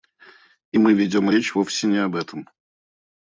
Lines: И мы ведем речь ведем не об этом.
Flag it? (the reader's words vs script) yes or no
yes